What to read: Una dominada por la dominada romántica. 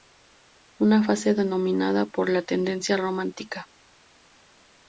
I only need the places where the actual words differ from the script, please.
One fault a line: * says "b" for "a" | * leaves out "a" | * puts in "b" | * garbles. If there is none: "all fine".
* puts in "fase"
* says "tendencia" for "dominada"